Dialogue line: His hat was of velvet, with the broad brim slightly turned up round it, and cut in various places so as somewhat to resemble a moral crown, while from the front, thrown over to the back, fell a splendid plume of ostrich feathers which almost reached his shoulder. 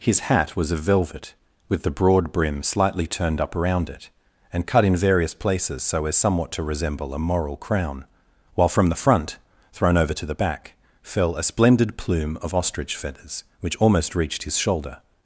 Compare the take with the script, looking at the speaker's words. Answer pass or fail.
fail